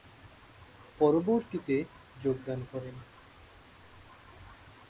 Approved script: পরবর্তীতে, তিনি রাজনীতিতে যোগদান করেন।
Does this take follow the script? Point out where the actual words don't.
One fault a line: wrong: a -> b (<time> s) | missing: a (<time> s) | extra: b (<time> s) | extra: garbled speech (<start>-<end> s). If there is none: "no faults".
missing: তিনি রাজনীতিতে (1.8 s)